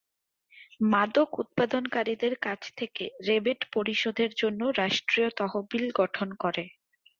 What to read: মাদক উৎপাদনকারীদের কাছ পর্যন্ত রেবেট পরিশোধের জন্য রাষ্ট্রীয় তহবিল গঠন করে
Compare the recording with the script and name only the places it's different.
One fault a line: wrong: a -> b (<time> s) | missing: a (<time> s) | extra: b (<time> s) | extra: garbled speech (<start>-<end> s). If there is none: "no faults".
wrong: পর্যন্ত -> থেকে (2.8 s)